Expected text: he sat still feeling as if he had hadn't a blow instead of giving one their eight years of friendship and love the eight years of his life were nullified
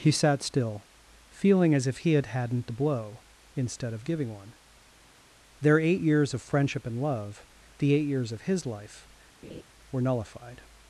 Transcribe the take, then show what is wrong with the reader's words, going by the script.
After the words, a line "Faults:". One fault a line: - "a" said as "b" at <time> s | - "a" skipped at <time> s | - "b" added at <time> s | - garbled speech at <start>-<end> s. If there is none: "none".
he sat still feeling as if he had hadn't a blow instead of giving one their eight years of friendship and love the eight years of his life were nullified
Faults:
none